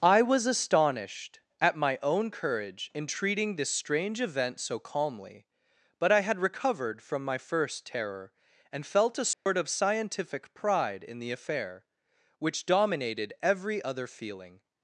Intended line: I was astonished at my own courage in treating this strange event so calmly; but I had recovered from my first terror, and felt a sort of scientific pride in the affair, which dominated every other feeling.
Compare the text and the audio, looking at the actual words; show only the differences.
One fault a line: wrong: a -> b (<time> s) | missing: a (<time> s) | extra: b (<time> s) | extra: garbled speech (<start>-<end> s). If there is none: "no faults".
no faults